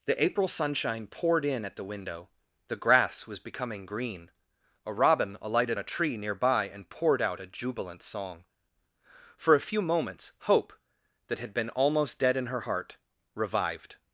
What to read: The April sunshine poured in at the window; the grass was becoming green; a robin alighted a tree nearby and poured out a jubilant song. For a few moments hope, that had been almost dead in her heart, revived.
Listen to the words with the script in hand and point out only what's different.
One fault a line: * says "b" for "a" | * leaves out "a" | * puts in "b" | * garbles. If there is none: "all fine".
all fine